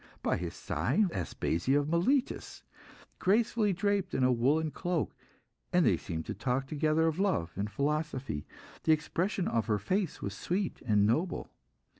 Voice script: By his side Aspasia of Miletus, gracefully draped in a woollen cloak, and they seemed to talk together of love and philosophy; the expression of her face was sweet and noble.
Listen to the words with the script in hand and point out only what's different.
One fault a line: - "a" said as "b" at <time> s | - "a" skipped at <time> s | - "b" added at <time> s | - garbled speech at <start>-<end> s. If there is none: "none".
none